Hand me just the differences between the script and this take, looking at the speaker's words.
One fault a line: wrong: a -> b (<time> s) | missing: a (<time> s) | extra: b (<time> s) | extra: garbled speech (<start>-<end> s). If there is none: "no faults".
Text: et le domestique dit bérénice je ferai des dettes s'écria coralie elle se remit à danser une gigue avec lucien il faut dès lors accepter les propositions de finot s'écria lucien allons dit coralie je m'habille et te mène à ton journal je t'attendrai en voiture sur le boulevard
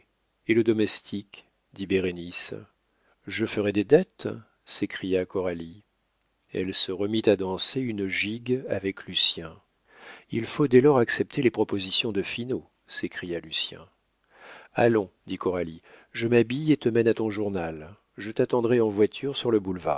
no faults